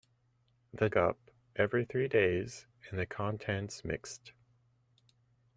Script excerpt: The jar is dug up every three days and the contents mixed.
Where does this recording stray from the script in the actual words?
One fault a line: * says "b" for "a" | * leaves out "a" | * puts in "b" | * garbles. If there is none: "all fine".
* leaves out "jar is dug"